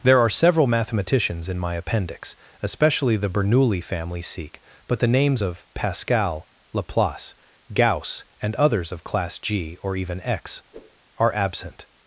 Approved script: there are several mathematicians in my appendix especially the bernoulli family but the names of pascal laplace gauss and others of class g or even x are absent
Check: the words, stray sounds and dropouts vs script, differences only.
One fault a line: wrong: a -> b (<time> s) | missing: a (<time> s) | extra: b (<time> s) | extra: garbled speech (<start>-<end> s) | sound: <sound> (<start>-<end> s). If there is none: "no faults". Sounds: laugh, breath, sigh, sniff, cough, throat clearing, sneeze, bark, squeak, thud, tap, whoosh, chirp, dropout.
extra: sikh (4.2 s)
sound: whoosh (10.7-11.0 s)